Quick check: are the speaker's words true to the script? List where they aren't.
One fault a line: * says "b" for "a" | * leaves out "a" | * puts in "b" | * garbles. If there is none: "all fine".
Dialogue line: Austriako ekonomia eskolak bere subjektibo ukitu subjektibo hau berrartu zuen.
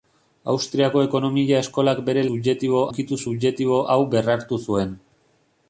all fine